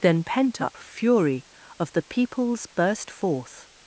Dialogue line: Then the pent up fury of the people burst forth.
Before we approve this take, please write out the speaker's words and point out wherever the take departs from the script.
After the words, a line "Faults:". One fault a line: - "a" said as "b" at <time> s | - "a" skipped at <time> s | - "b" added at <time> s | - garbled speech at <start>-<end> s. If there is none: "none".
Then pent up fury of the peoples burst forth.
Faults:
- "the" skipped at 0.2 s
- "people" said as "peoples" at 2.0 s